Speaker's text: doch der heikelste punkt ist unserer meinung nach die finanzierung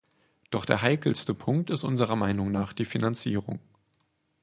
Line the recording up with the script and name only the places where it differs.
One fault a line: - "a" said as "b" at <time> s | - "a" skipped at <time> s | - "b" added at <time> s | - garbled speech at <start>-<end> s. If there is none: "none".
none